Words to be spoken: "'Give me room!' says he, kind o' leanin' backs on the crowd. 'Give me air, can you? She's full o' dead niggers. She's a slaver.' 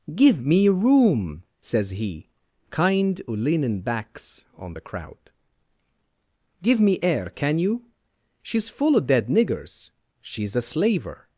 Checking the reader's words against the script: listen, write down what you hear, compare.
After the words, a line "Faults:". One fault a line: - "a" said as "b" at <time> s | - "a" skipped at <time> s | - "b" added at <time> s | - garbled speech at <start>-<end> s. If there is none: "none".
"'Give me room!' says he, kind o' leanin' backs on the crowd. 'Give me air, can you? She's full o' dead niggers. She's a slaver.'
Faults:
none